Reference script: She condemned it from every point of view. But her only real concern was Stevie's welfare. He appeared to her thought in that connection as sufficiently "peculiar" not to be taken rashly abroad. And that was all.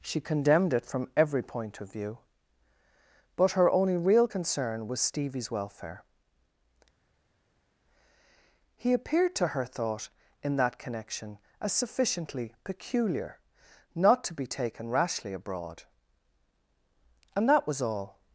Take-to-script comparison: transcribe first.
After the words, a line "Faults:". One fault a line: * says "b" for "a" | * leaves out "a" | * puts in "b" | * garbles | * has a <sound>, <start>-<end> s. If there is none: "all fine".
She condemned it from every point of view. But her only real concern was Stevie's welfare. He appeared to her thought in that connection as sufficiently "peculiar" not to be taken rashly abroad. And that was all.
Faults:
all fine